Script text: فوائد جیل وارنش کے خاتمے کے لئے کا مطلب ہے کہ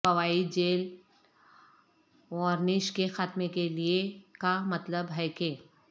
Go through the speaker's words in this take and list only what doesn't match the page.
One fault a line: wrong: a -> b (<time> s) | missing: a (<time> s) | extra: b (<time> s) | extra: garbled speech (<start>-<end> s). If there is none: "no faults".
no faults